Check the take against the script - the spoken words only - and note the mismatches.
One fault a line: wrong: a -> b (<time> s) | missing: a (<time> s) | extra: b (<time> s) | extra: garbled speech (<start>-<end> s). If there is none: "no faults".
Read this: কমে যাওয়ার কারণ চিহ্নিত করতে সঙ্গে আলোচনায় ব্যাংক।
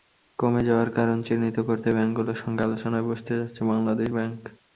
extra: ব্যাংকগুলোর (1.9 s)
extra: বসতে যাচ্ছে বাংলাদেশ (3.1 s)